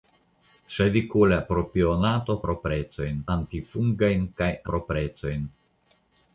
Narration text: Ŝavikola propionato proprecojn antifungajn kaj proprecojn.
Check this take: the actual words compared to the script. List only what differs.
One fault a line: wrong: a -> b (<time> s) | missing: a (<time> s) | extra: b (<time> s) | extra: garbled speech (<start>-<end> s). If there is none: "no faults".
no faults